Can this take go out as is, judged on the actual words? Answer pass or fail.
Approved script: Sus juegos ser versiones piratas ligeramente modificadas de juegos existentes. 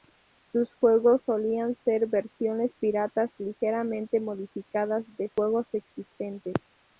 fail